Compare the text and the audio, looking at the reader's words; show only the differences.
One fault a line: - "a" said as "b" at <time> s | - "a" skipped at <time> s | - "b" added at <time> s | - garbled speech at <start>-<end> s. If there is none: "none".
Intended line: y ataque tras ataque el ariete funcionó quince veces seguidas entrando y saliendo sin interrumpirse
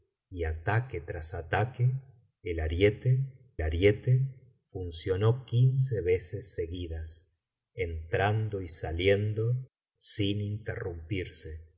- "ariete" added at 3.6 s